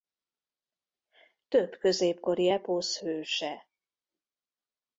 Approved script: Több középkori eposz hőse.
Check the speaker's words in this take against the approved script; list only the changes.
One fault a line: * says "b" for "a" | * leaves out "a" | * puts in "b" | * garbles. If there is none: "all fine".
all fine